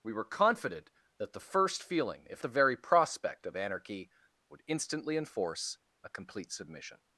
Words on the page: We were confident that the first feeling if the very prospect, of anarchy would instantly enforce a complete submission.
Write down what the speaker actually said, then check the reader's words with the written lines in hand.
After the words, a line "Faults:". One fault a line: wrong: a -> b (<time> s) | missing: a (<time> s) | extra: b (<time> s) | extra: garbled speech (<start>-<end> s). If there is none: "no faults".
We were confident that the first feeling if the very prospect, of anarchy would instantly enforce a complete submission.
Faults:
no faults